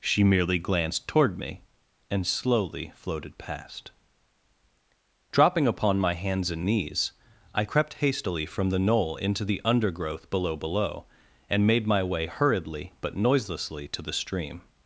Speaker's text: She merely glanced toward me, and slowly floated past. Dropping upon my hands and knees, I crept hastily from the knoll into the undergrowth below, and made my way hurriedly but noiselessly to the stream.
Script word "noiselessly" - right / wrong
right